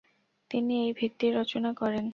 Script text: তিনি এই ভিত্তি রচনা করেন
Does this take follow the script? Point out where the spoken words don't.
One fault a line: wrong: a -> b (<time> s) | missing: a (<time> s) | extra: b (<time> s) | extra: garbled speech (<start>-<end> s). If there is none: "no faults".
no faults